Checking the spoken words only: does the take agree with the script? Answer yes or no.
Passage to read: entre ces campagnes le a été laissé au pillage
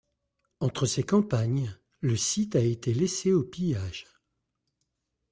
no